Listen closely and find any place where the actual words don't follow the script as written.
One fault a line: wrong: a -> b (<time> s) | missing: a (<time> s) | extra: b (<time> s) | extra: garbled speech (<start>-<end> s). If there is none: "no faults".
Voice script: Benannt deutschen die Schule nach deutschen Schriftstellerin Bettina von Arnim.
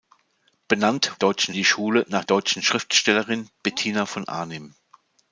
no faults